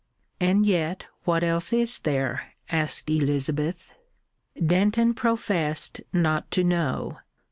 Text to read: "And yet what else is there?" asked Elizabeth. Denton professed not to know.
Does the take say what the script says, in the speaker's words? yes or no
yes